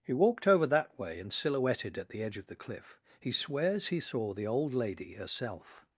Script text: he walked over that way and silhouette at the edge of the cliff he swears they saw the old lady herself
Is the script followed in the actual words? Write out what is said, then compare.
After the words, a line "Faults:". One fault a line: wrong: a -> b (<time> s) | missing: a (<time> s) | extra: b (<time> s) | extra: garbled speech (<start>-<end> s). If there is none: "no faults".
he walked over that way and silhouetted at the edge of the cliff he swears he saw the old lady herself
Faults:
wrong: silhouette -> silhouetted (1.3 s)
wrong: they -> he (3.9 s)